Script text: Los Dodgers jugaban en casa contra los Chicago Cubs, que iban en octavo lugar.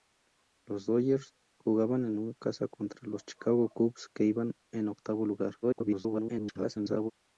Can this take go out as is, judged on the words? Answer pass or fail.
fail